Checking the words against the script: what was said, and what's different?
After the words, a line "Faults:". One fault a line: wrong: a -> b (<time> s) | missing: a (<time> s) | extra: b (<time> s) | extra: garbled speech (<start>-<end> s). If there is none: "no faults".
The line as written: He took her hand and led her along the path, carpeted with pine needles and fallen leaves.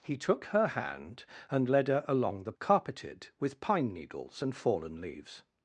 He took her hand and led her along the carpeted with pine needles and fallen leaves.
Faults:
missing: path (2.5 s)